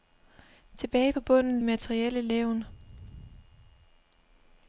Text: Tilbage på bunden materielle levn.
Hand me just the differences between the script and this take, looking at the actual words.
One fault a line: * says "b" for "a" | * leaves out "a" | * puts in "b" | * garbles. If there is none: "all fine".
all fine